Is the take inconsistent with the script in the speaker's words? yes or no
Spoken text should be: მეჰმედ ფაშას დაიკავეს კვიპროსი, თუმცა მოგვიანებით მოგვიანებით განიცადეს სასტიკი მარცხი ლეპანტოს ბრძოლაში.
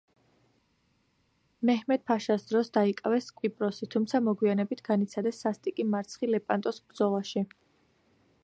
yes